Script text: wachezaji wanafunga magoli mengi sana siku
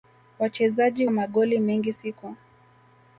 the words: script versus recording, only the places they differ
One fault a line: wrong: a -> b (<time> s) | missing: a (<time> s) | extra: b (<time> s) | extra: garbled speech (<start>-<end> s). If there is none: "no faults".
missing: wanafunga (1.1 s)
missing: sana (1.9 s)